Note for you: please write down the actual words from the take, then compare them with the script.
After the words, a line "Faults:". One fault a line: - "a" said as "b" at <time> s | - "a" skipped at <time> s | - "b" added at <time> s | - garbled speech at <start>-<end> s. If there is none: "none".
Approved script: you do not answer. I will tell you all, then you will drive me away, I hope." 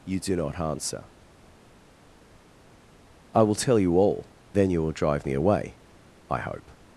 you do not answer. I will tell you all, then you will drive me away, I hope."
Faults:
none